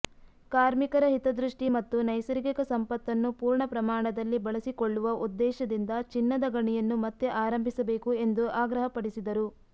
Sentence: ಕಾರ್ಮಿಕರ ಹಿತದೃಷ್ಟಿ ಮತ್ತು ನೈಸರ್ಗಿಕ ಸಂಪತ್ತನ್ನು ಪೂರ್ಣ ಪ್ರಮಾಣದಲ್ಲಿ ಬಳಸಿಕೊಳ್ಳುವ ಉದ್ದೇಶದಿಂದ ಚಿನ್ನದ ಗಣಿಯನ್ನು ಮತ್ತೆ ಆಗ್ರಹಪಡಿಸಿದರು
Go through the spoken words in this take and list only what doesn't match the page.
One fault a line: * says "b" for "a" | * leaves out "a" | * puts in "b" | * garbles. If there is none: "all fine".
* puts in "ಆರಂಭಿಸಬೇಕು ಎಂದು"